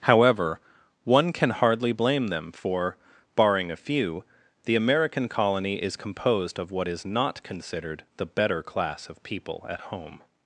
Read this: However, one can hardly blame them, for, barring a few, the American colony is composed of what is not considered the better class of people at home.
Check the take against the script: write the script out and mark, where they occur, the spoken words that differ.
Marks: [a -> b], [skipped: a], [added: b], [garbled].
However, one can hardly blame them, for, barring a few, the American colony is composed of what is not considered the better class of people at home.